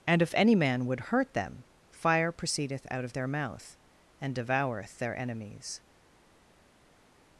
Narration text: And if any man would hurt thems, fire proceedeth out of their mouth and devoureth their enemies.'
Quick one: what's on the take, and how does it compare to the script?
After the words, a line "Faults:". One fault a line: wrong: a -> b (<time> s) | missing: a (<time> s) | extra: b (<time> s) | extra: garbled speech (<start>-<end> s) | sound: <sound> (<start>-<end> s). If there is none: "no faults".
And if any man would hurt them, fire proceedeth out of their mouth and devoureth their enemies.'
Faults:
wrong: thems -> them (1.3 s)